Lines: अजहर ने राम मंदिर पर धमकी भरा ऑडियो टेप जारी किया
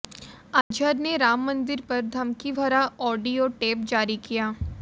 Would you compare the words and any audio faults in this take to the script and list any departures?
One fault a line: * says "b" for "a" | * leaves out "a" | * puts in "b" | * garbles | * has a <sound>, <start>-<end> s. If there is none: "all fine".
* has a dropout, 0.6-0.7 s